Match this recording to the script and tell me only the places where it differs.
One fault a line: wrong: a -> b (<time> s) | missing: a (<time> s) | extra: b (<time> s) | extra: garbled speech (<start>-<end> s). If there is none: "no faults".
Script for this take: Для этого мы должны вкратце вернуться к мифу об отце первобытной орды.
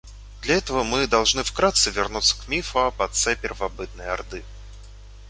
no faults